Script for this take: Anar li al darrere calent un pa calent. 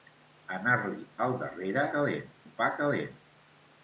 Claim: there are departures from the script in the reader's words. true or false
false